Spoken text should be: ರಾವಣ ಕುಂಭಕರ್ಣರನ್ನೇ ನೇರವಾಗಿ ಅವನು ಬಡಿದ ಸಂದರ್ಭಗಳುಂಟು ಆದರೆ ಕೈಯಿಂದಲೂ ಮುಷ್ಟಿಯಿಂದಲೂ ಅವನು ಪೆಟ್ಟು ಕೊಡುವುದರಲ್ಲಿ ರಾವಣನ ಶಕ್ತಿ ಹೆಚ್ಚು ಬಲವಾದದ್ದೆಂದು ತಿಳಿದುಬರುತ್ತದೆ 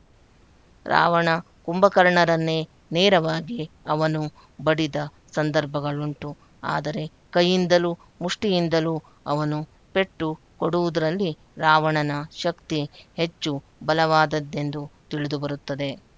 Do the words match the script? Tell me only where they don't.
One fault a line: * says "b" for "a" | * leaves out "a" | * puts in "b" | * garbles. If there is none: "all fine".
all fine